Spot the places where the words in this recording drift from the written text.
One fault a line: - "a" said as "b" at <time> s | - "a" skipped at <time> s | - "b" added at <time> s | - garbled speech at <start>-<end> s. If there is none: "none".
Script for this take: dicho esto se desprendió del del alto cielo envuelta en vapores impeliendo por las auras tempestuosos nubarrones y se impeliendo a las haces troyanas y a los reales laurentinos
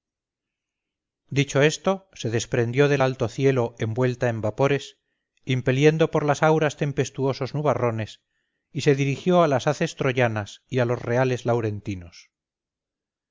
- "del" skipped at 3.0 s
- "impeliendo" said as "dirigió" at 8.9 s